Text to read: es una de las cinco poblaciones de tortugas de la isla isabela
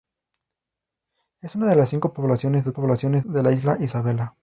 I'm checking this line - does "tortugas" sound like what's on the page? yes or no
no